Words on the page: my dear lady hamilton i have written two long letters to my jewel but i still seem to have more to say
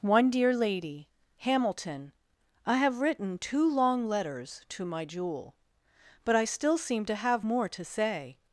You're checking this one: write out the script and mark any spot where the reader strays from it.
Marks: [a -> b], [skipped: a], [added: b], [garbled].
[my -> one] dear lady hamilton i have written two long letters to my jewel but i still seem to have more to say